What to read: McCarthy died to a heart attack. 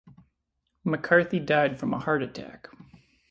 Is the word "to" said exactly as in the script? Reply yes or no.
no